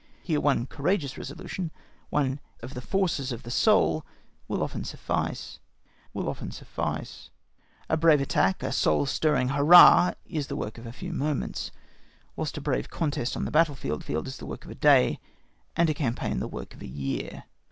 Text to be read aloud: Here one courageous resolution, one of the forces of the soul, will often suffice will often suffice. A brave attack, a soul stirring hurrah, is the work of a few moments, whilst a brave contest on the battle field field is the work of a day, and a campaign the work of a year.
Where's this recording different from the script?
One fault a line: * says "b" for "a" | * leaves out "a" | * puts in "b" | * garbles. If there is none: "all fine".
all fine